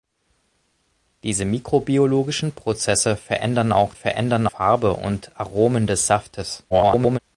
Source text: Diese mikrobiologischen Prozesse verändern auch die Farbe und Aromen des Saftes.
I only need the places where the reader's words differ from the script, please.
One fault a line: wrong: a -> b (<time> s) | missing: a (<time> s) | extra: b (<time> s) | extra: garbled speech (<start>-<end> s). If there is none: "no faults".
wrong: die -> verändern (3.9 s)
extra: garbled speech (6.7-7.2 s)